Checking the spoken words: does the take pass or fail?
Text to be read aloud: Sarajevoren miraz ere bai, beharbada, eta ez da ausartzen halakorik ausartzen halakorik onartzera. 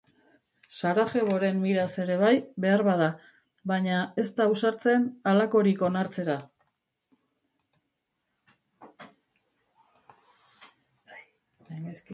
fail